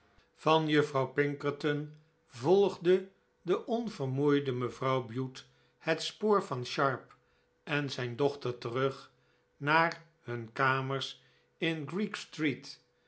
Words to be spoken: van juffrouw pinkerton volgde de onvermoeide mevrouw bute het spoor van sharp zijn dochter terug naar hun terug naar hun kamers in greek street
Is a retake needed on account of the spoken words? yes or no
yes